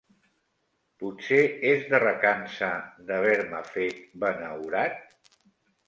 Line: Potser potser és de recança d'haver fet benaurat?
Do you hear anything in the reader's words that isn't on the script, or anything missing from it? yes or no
yes